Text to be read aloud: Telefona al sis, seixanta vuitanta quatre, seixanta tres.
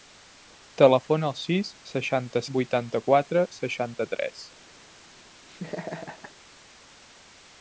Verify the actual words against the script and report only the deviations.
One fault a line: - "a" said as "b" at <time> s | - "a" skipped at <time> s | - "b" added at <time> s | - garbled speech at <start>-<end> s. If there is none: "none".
none